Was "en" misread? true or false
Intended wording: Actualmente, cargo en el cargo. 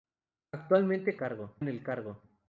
false